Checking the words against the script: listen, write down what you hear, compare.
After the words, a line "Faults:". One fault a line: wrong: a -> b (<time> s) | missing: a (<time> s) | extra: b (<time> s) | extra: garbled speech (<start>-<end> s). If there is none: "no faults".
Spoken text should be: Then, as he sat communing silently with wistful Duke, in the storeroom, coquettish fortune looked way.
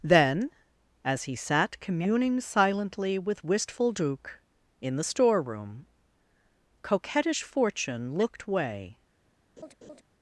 Then, as he sat communing silently with wistful Duke, in the storeroom, coquettish fortune looked way.
Faults:
no faults